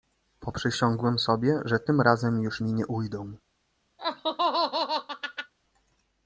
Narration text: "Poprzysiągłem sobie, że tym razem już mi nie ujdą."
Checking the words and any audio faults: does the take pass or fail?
fail